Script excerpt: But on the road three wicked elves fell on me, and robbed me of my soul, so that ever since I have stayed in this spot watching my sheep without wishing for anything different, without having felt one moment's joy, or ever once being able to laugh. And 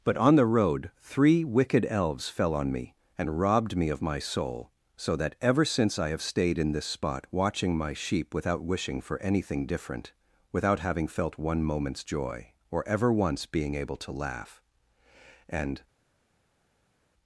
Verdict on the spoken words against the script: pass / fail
pass